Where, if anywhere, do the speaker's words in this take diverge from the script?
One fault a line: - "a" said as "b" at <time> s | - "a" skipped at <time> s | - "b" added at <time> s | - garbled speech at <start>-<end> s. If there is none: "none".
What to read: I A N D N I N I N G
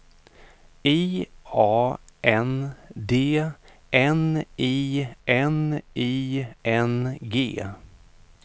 none